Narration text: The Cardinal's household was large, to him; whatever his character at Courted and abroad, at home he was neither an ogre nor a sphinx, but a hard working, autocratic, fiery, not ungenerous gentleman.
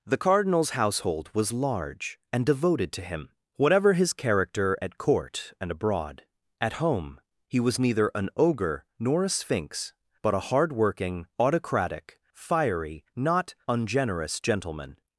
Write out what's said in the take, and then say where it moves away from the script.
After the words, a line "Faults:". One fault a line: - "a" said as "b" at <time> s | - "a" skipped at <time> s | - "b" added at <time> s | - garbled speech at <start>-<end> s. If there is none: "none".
The Cardinal's household was large, and devoted to him; whatever his character at Court and abroad, at home he was neither an ogre nor a sphinx, but a hard working, autocratic, fiery, not ungenerous gentleman.
Faults:
- "and devoted" added at 2.3 s
- "Courted" said as "Court" at 5.0 s